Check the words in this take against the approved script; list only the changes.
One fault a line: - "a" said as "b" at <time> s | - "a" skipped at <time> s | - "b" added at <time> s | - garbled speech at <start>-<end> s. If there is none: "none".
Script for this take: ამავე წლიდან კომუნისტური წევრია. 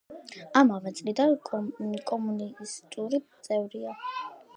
none